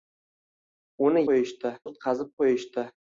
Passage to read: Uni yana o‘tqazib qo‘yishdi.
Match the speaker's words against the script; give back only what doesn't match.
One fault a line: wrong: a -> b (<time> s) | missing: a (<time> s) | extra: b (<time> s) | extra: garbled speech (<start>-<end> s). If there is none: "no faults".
wrong: yana -> qo‘yishdi (1.3 s)